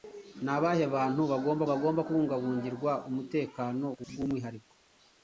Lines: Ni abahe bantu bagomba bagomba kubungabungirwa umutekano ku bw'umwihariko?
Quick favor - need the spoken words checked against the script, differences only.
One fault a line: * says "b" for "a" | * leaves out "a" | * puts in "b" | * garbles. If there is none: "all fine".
all fine